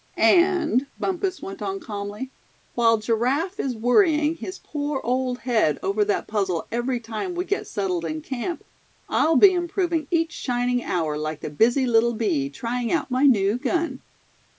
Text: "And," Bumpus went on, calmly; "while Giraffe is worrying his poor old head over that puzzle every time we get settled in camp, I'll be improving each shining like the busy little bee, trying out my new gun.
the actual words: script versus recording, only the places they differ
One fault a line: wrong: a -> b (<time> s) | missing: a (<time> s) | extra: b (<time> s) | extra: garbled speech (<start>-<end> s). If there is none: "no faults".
extra: hour (10.8 s)